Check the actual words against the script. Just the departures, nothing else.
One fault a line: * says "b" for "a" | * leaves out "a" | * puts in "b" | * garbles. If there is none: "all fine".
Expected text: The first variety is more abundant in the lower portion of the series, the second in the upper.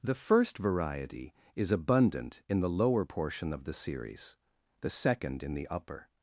* leaves out "more"